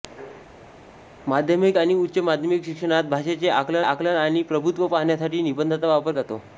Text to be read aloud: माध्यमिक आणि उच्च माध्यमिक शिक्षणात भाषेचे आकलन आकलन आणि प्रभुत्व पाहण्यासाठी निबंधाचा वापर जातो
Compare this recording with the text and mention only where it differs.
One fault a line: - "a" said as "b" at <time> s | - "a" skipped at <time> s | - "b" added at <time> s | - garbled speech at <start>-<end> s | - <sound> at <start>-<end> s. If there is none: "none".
none